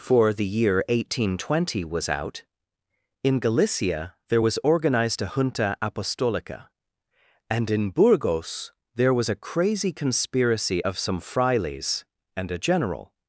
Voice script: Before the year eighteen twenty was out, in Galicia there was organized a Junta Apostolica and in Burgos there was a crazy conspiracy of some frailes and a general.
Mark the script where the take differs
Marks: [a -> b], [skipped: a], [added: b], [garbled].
[Before -> For] the year eighteen twenty was out, in Galicia there was organized a Junta Apostolica and in Burgos there was a crazy conspiracy of some frailes and a general.